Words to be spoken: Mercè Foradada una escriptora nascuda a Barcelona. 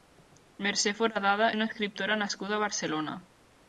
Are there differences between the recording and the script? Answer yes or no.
no